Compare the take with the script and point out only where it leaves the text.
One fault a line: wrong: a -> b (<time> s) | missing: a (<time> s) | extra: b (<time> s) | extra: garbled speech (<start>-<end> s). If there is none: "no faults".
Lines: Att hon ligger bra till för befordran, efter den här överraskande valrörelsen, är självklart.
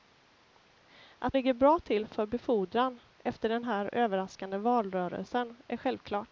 missing: hon (1.4 s)